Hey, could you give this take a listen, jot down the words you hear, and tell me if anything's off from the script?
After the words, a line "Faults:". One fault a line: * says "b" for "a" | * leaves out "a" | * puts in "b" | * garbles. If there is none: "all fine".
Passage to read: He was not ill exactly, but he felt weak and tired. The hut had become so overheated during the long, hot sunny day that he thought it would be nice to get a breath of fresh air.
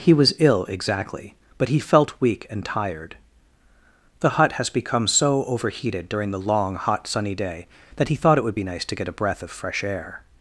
He was ill exactly, but he felt weak and tired. The hut has become so overheated during the long, hot sunny day that he thought it would be nice to get a breath of fresh air.
Faults:
* leaves out "not"
* says "has" for "had"